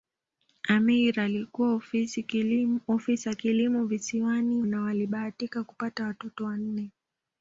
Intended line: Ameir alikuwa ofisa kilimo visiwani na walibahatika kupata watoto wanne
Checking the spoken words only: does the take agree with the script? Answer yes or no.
yes